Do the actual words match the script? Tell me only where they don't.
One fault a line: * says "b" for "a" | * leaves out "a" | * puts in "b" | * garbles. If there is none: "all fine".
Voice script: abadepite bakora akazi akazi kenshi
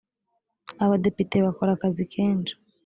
* leaves out "akazi"